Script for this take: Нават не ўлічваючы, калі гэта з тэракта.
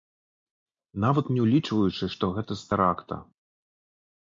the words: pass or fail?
fail